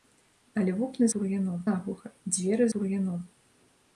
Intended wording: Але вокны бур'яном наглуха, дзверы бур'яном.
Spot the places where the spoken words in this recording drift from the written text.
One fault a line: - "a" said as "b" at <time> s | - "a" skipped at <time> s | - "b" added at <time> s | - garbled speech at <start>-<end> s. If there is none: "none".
none